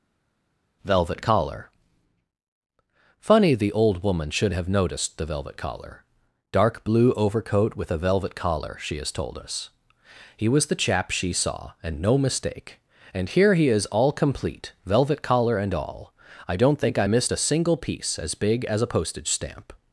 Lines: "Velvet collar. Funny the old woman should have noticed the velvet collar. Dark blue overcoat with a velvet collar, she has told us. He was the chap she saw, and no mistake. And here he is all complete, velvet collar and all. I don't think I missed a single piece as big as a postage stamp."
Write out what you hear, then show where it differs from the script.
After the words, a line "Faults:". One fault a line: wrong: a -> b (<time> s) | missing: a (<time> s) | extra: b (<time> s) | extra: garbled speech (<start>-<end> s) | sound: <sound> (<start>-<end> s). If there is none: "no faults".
"Velvet collar. Funny the old woman should have noticed the velvet collar. Dark blue overcoat with a velvet collar, she has told us. He was the chap she saw, and no mistake. And here he is all complete, velvet collar and all. I don't think I missed a single piece as big as a postage stamp."
Faults:
no faults